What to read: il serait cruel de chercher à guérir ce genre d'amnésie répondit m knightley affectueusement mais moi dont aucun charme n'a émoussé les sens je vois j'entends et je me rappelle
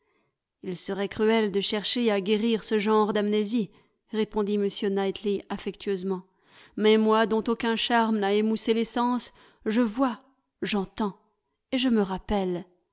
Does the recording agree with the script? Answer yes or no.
yes